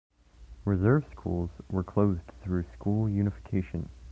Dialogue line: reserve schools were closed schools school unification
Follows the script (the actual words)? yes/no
no